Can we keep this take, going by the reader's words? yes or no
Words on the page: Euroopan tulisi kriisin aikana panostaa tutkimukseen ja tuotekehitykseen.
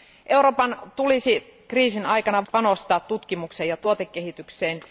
yes